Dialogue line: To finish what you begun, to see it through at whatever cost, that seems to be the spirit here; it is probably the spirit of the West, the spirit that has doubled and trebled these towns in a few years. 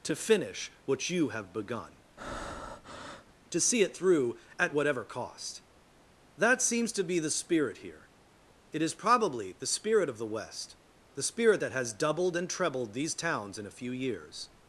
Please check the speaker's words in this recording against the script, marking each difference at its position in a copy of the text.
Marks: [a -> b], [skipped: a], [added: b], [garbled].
To finish what you [added: have] begun, to see it through at whatever cost, that seems to be the spirit here; it is probably the spirit of the West, the spirit that has doubled and trebled these towns in a few years.